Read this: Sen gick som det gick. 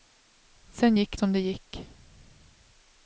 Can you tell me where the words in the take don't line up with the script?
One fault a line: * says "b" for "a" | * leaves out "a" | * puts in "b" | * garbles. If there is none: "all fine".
all fine